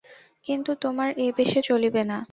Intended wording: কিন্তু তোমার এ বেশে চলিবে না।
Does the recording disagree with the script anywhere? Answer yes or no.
no